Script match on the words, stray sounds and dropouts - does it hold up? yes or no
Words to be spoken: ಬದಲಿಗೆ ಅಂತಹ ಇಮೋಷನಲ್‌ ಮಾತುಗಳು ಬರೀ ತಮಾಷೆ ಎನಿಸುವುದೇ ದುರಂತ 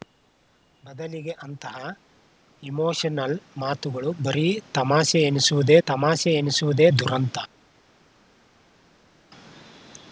no